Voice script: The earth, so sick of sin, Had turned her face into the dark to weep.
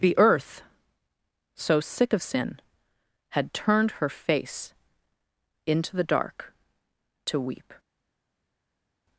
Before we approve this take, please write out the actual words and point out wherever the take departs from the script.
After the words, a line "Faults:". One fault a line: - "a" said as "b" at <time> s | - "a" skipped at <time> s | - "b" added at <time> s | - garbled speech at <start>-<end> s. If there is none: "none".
The earth, so sick of sin, Had turned her face into the dark to weep.
Faults:
none